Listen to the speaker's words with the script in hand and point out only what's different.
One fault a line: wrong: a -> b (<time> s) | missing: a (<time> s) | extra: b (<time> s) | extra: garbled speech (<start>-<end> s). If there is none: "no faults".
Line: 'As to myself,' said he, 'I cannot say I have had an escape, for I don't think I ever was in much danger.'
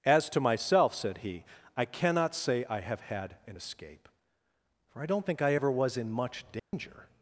no faults